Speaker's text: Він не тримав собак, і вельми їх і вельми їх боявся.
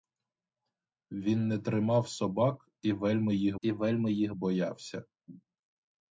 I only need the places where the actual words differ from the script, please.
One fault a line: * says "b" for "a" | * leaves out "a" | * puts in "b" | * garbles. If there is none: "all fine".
all fine